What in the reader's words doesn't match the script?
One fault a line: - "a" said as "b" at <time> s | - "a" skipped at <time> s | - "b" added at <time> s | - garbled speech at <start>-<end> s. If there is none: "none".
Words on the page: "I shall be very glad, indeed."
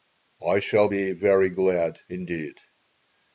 none